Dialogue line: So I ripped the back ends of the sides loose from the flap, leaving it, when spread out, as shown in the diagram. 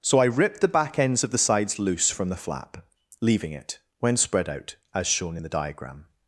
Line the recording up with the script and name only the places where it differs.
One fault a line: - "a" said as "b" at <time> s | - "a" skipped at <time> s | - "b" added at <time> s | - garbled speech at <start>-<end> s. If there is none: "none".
none